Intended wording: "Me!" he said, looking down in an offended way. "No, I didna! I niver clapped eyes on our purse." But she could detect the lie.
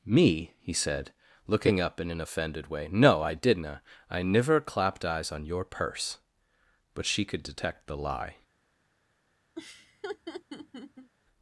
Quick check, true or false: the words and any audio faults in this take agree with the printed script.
false